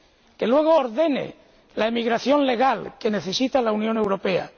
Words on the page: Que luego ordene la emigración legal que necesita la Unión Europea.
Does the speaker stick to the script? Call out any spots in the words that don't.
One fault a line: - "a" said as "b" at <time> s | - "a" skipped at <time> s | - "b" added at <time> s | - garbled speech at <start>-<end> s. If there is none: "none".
none